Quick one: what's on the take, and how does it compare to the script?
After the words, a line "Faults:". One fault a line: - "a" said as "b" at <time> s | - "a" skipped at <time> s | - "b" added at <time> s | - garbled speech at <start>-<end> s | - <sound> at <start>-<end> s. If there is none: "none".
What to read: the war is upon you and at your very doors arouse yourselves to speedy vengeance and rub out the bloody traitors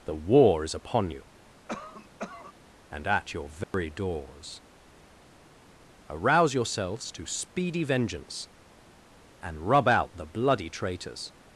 the war is upon you and at your very doors arouse yourselves to speedy vengeance and rub out the bloody traitors
Faults:
- cough at 1.7-2.5 s
- dropout at 3.6-3.7 s